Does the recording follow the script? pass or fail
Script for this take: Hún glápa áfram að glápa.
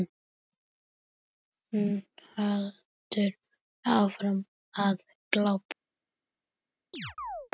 fail